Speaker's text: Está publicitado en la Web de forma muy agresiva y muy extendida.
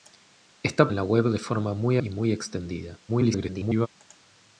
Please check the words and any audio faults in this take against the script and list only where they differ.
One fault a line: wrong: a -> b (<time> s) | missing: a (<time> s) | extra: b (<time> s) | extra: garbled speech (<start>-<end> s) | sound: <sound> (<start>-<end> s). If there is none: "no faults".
missing: publicitado (0.9 s)
missing: agresiva (2.0 s)
extra: garbled speech (3.1-3.9 s)